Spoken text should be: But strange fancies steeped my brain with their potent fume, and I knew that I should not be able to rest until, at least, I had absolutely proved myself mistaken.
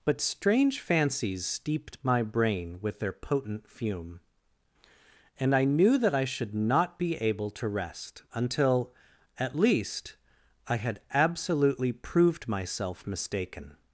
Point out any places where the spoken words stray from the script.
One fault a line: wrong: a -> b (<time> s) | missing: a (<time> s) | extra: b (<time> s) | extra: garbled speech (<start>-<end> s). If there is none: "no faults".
no faults